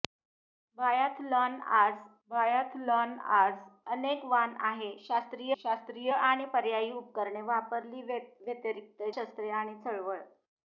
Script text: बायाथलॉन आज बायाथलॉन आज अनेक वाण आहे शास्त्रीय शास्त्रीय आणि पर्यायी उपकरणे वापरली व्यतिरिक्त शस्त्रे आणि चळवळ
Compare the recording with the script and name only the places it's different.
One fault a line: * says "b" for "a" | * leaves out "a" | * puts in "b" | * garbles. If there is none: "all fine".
all fine